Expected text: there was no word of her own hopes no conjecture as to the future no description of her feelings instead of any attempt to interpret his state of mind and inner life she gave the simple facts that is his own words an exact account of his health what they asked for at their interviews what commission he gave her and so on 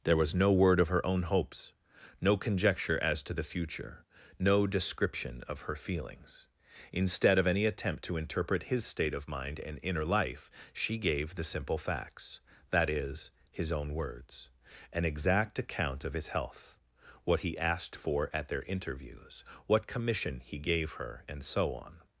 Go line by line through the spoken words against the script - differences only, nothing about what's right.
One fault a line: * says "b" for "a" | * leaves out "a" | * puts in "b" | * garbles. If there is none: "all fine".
* says "he" for "they"